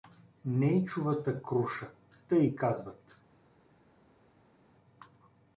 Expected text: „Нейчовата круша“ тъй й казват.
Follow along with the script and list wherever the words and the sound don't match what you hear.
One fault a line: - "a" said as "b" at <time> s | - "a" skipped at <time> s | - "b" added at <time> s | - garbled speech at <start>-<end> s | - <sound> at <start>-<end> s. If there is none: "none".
none